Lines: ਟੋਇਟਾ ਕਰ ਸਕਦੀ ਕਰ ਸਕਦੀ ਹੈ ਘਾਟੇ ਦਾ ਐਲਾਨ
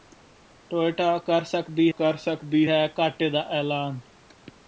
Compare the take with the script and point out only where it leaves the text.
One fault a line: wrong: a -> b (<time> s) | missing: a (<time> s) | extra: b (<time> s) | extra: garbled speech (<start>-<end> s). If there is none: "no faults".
no faults